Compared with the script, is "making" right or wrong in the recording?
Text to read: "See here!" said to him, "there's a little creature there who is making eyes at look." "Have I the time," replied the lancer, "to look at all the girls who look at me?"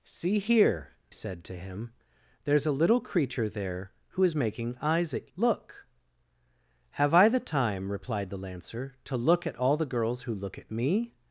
right